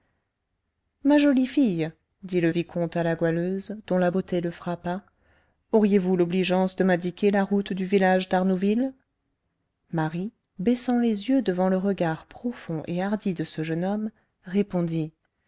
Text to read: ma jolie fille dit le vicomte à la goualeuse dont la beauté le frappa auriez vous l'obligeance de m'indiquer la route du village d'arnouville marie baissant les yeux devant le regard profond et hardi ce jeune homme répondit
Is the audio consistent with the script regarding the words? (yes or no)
no